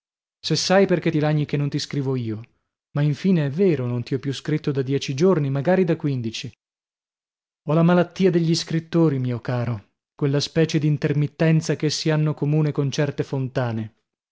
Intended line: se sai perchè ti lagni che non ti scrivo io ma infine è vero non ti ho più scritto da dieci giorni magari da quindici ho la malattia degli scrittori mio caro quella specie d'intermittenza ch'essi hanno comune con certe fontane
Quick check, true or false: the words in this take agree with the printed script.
true